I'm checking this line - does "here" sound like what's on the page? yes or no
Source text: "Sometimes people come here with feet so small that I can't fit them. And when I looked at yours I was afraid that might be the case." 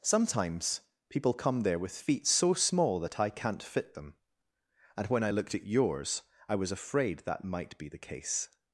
no